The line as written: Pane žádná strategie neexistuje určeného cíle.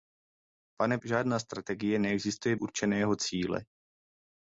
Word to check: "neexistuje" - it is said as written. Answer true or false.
true